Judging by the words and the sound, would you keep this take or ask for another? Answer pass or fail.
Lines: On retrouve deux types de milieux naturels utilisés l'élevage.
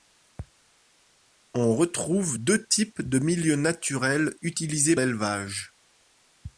pass